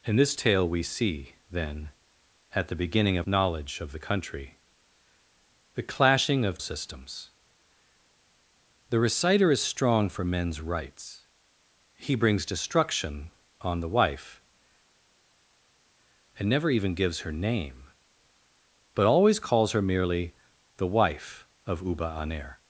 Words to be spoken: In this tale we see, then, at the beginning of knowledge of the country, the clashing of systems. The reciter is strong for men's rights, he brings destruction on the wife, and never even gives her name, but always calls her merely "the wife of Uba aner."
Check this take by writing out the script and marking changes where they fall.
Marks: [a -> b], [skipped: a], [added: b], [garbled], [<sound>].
In this tale we see, then, at the beginning of knowledge of the country, the clashing of systems. The reciter is strong for men's rights, he brings destruction on the wife, and never even gives her name, but always calls her merely "the wife of Uba aner."